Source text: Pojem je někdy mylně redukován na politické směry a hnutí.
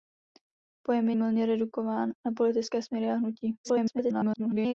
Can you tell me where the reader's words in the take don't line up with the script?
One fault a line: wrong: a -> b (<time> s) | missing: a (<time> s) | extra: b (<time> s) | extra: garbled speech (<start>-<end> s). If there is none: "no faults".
missing: někdy (1.1 s)
extra: garbled speech (3.6-4.7 s)